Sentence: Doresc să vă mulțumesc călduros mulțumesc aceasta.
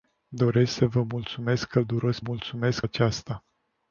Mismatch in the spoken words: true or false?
false